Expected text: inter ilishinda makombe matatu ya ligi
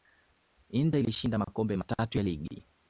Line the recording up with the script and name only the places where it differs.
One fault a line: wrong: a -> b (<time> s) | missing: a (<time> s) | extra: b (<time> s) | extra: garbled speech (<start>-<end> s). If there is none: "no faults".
no faults